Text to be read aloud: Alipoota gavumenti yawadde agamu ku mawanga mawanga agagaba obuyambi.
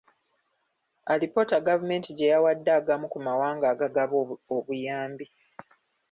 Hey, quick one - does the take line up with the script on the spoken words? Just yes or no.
no